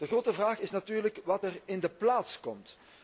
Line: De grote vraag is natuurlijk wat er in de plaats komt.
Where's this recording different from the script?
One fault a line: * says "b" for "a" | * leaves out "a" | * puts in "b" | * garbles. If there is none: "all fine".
all fine